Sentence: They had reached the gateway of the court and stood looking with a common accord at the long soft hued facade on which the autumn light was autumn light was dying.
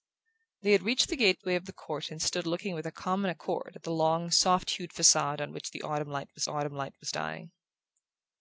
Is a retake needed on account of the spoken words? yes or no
no